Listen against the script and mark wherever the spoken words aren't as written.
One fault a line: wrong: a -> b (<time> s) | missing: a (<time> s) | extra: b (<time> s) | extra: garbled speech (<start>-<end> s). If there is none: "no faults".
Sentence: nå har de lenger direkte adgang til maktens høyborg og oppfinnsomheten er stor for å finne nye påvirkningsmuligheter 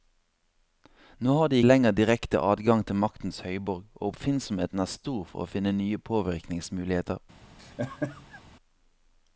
no faults